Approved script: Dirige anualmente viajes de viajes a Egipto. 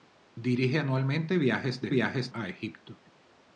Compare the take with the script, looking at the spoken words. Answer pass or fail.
pass